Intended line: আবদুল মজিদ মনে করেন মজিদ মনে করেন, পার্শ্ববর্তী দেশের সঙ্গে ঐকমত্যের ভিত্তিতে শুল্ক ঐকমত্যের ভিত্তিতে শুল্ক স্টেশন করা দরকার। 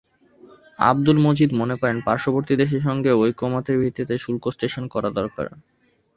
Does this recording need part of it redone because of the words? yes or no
yes